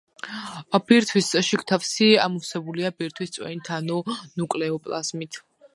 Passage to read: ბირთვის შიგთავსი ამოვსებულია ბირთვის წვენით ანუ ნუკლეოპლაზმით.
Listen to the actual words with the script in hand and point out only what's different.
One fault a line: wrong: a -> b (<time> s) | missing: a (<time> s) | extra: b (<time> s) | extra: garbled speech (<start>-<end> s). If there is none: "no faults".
no faults